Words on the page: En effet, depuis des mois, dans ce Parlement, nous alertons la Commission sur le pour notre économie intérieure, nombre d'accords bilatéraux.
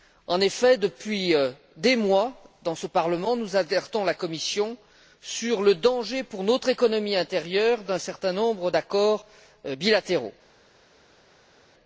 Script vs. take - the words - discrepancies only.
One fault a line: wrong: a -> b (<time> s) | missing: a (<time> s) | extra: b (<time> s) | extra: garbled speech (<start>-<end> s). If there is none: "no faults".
extra: danger (5.7 s)
extra: d'un certain (7.8 s)